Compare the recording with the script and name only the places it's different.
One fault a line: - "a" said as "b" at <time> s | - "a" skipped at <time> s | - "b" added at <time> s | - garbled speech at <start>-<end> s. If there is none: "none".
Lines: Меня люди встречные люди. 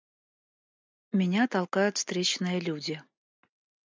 - "люди" said as "толкают" at 1.5 s